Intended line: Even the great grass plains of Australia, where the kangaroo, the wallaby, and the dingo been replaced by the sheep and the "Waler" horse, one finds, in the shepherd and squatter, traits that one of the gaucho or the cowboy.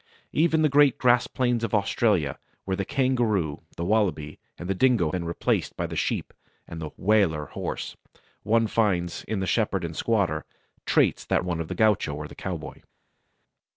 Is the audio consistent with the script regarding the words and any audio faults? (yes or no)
yes